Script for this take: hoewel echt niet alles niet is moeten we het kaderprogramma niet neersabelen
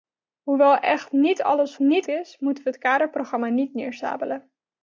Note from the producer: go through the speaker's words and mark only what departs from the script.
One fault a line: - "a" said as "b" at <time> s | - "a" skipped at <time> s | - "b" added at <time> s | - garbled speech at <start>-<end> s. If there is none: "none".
none